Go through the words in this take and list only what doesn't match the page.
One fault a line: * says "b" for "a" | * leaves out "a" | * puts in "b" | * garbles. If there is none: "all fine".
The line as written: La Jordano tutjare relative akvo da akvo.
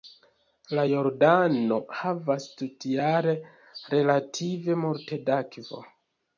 * puts in "havas"
* says "multe" for "akvo"